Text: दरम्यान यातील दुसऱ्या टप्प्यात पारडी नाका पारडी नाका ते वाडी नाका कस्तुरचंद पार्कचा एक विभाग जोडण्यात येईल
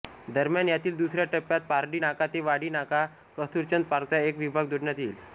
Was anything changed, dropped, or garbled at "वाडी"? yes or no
no